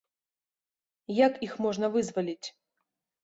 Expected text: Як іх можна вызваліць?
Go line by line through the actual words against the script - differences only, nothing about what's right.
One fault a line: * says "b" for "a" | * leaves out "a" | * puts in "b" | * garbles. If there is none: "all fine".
all fine